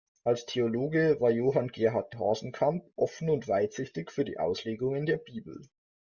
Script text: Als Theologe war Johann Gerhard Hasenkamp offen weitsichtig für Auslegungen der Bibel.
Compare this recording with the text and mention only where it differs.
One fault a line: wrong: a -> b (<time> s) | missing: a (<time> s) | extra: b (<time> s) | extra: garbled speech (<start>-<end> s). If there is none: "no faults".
extra: und (3.3 s)
extra: die (4.2 s)